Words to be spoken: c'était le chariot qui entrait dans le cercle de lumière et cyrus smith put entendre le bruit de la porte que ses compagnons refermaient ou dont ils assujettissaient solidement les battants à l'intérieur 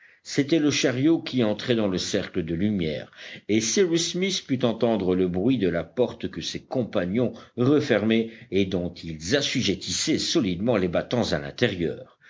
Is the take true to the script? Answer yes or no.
no